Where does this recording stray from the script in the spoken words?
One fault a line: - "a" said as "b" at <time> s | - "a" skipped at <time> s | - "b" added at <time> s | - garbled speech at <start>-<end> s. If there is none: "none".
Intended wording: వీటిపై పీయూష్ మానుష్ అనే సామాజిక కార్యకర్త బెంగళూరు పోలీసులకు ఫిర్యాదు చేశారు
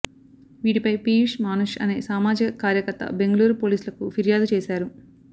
none